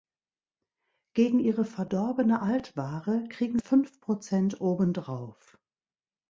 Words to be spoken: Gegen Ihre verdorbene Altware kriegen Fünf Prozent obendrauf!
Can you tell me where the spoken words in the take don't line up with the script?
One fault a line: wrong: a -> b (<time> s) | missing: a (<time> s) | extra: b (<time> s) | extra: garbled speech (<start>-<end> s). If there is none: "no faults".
no faults